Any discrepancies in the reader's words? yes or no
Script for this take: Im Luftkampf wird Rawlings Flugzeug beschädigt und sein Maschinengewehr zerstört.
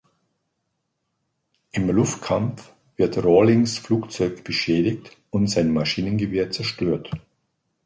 no